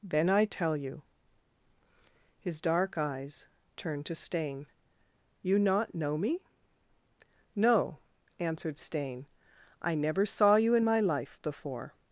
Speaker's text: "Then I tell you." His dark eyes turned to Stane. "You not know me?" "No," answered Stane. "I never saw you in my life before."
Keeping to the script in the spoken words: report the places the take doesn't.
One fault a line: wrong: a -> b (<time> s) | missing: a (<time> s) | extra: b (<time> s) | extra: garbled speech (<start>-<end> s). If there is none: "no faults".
no faults